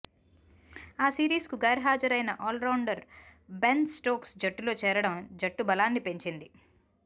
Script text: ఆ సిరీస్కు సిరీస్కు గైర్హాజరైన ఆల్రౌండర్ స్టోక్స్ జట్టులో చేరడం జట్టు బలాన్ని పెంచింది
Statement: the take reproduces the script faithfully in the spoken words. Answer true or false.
false